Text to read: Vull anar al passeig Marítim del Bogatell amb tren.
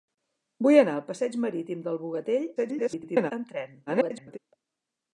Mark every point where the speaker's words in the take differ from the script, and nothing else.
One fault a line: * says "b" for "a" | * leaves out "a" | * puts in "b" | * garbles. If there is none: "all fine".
* garbles
* garbles